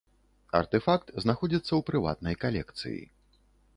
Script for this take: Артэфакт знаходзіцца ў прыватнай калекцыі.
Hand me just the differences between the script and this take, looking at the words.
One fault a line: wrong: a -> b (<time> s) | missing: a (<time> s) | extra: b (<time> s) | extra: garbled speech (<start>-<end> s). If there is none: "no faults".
no faults